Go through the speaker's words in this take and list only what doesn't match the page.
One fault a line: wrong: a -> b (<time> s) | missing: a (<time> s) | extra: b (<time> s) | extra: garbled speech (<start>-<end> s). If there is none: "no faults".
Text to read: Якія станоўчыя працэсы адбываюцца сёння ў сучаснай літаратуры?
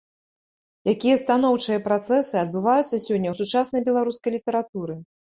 extra: беларускай (3.9 s)